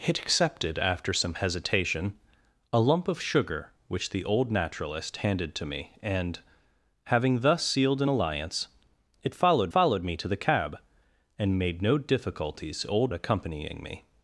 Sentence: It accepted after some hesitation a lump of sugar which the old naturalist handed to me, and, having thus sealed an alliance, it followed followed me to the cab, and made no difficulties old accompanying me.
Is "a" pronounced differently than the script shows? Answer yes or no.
no